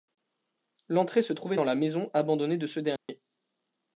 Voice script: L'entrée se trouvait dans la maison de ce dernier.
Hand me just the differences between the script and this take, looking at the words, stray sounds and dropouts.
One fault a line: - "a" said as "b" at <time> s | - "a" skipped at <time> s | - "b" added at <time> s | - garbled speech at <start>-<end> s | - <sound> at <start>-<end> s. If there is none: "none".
- "abandonnée" added at 2.1 s
- dropout at 3.0-3.1 s